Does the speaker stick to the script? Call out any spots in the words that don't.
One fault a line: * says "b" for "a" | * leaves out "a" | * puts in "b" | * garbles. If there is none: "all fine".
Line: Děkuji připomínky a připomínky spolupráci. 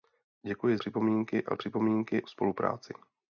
all fine